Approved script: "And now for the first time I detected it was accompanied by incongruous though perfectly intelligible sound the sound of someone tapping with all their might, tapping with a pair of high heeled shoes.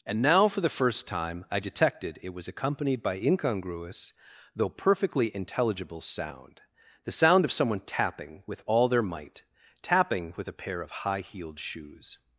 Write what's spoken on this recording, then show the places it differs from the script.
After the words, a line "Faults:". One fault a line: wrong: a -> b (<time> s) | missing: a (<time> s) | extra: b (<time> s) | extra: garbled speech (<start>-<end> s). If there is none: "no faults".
"And now for the first time I detected it was accompanied by incongruous though perfectly intelligible sound the sound of someone tapping with all their might, tapping with a pair of high heeled shoes.
Faults:
no faults